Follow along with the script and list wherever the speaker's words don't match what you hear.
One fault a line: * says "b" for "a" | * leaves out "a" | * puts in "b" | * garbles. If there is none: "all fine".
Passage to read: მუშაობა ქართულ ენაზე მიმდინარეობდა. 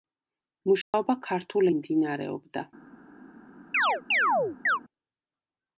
* leaves out "ენაზე"